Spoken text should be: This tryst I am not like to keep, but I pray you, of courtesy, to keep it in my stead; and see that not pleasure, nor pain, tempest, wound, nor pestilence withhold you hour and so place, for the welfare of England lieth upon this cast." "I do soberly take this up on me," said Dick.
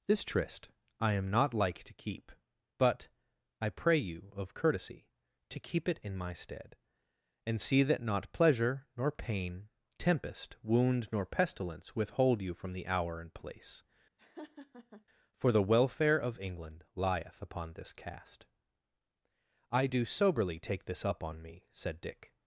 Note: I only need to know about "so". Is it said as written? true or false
false